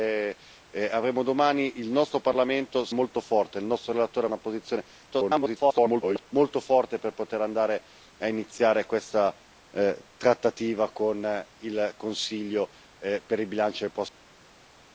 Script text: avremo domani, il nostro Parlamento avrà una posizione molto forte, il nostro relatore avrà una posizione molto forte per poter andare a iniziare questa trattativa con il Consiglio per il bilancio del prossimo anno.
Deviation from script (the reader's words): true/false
true